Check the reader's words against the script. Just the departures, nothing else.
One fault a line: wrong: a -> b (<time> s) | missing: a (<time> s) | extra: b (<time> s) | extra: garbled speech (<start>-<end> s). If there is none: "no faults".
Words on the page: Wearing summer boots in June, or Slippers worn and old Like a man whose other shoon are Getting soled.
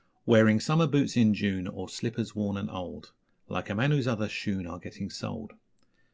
no faults